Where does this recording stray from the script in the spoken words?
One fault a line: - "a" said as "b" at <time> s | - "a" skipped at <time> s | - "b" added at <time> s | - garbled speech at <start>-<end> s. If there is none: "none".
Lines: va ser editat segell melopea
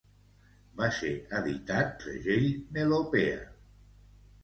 none